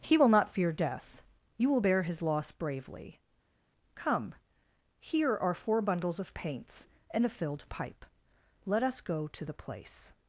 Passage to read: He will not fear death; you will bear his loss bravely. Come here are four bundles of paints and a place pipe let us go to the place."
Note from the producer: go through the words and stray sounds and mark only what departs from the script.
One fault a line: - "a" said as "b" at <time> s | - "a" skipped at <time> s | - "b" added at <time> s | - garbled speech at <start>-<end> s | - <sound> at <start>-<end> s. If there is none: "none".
- "place" said as "filled" at 7.3 s